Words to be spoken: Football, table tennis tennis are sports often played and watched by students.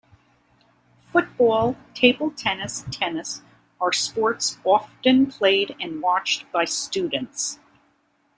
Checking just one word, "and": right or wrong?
right